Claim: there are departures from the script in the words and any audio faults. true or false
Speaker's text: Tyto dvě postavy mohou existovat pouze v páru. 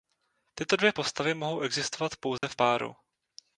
true